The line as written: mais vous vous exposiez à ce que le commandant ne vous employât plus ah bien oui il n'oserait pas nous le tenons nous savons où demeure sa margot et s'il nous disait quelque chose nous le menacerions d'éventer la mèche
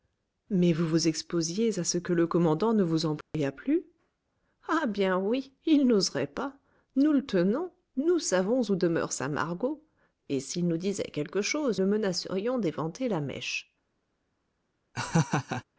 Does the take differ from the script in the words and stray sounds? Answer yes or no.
yes